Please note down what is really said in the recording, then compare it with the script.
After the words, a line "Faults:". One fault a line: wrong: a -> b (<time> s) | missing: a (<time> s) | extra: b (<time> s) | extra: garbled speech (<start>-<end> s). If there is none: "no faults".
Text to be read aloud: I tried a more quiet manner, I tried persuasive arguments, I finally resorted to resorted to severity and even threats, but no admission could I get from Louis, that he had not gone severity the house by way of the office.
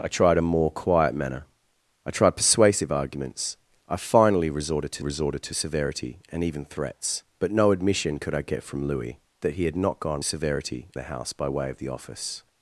I tried a more quiet manner, I tried persuasive arguments, I finally resorted to resorted to severity and even threats, but no admission could I get from Louis, that he had not gone severity the house by way of the office.
Faults:
no faults